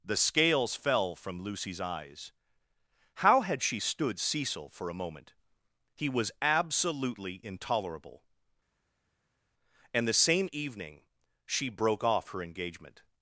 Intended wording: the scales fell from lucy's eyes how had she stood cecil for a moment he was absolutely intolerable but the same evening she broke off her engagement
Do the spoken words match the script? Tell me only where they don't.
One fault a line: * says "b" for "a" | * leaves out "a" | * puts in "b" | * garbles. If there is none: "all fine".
* says "and" for "but"